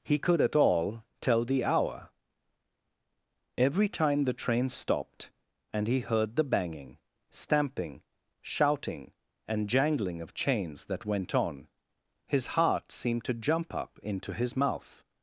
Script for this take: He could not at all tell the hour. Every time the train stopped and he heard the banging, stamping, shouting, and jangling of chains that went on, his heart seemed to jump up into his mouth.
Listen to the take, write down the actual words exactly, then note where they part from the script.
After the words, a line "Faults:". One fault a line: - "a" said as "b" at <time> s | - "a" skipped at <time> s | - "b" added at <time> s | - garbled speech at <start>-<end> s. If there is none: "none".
He could at all tell the hour. Every time the train stopped and he heard the banging, stamping, shouting, and jangling of chains that went on, his heart seemed to jump up into his mouth.
Faults:
- "not" skipped at 0.4 s